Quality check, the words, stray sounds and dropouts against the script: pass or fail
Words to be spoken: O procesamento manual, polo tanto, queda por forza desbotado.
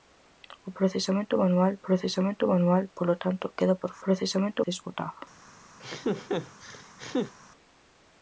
fail